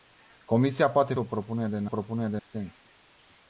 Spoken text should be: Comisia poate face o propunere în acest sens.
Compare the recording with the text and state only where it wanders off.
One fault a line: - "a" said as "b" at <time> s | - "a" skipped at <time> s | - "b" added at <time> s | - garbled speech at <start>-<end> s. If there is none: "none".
- "face" skipped at 1.1 s
- "acest" said as "propunere" at 1.8 s